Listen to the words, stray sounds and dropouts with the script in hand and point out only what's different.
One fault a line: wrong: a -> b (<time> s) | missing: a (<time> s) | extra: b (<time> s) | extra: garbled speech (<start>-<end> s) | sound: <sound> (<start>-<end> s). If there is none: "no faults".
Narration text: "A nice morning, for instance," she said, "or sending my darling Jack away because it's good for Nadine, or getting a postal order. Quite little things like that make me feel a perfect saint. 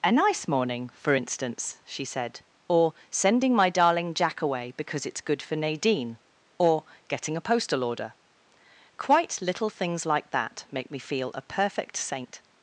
no faults